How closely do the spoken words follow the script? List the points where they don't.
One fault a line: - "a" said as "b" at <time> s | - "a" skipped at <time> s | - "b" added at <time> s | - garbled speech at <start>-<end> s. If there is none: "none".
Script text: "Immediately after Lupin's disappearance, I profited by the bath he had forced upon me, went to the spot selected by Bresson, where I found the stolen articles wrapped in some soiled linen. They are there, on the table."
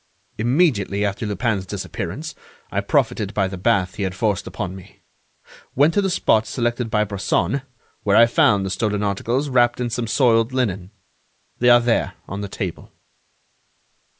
none